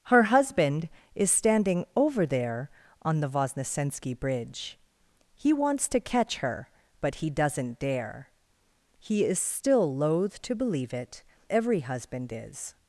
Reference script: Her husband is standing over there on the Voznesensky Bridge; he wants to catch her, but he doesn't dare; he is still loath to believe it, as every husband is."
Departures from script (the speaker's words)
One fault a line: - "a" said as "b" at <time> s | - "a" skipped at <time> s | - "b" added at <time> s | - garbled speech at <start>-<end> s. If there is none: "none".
- "as" skipped at 11.2 s